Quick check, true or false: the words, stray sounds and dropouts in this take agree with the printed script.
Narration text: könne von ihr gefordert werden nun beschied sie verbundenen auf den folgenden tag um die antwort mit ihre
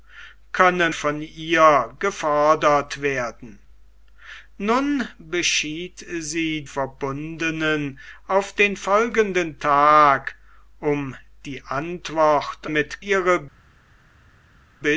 true